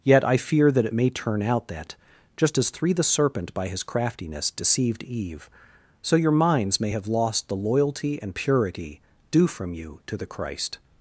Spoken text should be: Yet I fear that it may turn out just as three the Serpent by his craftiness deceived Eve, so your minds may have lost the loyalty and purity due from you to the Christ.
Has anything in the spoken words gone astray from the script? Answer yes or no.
yes